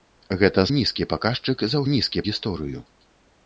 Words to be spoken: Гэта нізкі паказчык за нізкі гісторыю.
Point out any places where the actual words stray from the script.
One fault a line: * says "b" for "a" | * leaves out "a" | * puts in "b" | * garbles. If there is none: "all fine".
all fine